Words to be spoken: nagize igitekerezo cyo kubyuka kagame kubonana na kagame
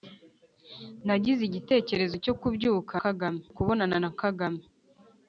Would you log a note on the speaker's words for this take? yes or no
no